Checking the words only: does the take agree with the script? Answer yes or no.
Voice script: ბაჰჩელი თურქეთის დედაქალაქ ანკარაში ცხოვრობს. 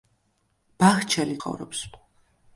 no